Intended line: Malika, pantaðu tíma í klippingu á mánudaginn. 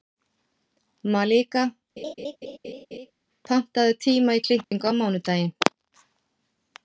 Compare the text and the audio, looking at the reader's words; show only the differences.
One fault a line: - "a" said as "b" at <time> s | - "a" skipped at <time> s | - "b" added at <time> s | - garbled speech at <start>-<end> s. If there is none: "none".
none